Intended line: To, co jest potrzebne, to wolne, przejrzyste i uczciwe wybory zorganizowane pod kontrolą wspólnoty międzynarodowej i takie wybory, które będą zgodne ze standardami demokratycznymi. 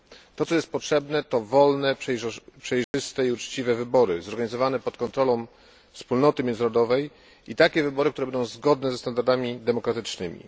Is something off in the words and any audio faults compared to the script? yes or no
yes